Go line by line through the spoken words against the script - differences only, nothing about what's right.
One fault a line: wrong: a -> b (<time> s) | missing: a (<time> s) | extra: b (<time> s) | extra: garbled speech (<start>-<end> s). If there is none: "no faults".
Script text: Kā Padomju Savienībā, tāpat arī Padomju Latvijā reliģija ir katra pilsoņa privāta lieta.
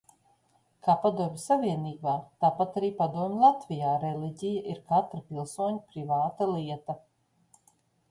no faults